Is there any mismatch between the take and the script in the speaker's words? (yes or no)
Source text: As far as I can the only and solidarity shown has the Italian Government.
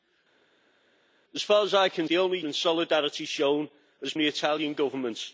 no